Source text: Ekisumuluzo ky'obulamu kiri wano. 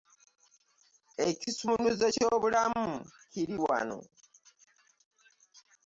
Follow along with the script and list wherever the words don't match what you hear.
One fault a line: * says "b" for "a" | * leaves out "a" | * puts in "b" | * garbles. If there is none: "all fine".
all fine